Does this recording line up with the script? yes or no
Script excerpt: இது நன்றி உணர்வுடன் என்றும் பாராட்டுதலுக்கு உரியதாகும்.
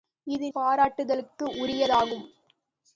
no